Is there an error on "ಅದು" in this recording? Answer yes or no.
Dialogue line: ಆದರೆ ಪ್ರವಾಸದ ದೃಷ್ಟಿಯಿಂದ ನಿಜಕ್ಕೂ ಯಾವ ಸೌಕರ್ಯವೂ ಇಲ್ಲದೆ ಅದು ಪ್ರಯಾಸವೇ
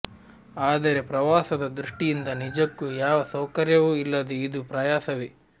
yes